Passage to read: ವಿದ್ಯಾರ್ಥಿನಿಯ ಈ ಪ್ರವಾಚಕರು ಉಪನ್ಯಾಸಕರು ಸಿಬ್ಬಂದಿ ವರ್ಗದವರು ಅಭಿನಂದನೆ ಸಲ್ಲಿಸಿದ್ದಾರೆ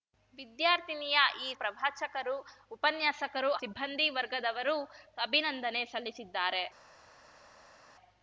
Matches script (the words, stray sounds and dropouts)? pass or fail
pass